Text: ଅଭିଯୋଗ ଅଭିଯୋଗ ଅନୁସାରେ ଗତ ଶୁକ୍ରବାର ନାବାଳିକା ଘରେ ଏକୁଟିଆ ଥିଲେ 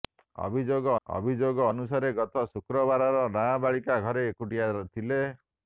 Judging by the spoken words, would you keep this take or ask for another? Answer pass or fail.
pass